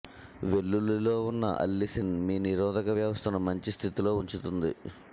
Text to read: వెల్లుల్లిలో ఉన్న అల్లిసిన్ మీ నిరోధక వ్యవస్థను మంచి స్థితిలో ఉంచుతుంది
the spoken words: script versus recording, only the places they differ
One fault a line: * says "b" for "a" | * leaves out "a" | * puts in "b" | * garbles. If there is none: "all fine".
all fine